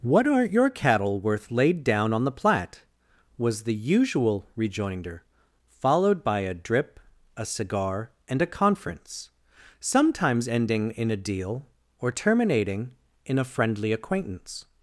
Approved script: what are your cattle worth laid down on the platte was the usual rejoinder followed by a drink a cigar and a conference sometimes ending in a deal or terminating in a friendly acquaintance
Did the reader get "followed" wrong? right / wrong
right